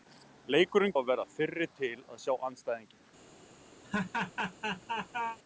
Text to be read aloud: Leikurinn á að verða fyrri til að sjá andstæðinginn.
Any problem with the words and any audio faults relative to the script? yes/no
yes